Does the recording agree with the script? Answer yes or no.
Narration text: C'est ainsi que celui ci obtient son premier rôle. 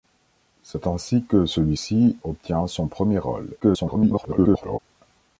no